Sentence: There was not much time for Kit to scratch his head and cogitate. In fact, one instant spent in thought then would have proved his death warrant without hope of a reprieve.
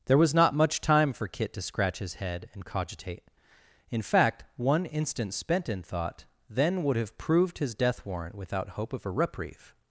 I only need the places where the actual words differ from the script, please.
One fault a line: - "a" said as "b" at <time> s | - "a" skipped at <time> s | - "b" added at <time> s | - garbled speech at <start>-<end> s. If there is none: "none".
none